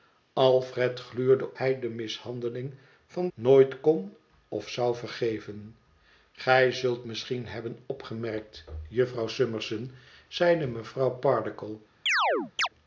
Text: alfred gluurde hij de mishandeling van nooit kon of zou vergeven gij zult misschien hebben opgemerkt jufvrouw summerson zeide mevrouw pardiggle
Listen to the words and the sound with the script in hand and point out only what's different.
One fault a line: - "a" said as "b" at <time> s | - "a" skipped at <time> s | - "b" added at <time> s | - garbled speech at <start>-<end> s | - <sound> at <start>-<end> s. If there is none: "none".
- chirp at 12.1-12.7 s